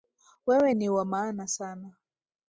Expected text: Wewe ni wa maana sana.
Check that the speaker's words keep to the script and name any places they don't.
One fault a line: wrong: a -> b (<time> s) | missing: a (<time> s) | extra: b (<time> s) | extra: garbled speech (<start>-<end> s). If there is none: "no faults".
no faults